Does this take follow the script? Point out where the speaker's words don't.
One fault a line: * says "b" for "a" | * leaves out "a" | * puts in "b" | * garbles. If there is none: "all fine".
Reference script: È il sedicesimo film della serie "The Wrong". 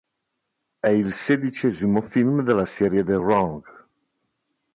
all fine